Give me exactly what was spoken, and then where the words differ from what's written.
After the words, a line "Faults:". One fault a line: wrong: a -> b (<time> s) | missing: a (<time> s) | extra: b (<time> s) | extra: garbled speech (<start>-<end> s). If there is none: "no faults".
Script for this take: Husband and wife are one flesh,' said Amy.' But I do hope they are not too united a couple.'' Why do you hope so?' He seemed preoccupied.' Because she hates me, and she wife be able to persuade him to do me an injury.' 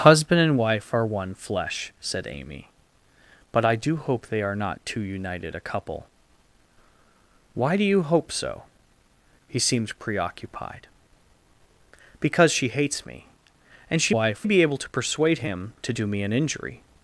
Husband and wife are one flesh,' said Amy.' But I do hope they are not too united a couple.'' Why do you hope so?' He seemed preoccupied.' Because she hates me, and she wife be able to persuade him to do me an injury.'
Faults:
no faults